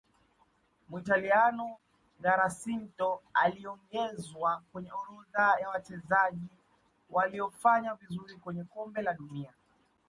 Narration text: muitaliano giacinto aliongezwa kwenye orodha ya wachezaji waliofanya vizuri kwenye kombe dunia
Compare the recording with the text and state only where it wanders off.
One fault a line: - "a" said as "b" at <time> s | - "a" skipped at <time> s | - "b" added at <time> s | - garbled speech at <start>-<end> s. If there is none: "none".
- "la" added at 9.0 s